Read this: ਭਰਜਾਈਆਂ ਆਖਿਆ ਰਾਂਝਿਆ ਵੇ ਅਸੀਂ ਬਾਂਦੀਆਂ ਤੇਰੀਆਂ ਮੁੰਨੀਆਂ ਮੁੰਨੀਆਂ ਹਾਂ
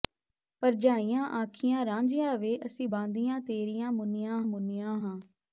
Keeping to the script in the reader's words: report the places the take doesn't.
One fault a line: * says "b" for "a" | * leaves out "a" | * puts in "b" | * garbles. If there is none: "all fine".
all fine